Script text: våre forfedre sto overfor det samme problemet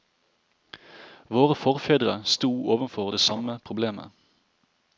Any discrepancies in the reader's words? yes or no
no